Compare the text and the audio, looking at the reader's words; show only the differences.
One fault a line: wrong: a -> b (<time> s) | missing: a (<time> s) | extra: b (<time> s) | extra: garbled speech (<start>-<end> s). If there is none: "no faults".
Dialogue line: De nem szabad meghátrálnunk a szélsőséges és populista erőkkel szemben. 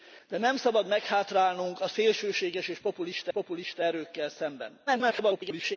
extra: populista (3.3 s)
extra: garbled speech (4.9-5.8 s)